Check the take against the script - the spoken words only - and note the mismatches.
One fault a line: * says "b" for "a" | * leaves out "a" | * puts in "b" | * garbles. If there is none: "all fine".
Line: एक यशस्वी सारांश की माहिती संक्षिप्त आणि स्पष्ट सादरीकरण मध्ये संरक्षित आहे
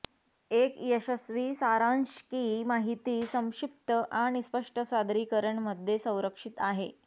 all fine